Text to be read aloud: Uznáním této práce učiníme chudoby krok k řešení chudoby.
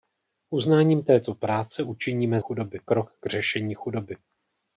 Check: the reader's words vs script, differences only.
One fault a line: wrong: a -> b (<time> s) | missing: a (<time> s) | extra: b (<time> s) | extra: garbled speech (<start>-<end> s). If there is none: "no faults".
no faults